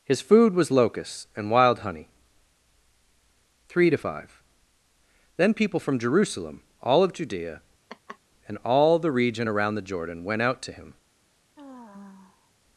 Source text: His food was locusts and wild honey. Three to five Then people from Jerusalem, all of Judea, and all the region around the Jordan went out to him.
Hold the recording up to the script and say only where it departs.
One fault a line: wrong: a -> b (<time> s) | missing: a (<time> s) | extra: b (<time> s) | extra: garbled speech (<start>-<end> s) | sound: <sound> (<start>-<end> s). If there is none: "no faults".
sound: laugh (7.9-8.2 s)
sound: sigh (11.6-12.5 s)